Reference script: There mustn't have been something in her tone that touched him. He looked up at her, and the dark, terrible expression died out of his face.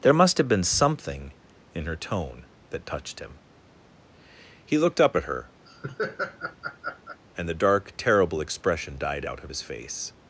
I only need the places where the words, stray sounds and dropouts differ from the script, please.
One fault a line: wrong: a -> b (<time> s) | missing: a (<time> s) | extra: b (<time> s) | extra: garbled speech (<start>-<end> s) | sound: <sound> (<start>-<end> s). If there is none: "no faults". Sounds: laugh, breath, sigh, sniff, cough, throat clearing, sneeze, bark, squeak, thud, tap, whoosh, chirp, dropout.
wrong: mustn't -> must (0.1 s)
sound: laugh (5.7-7.2 s)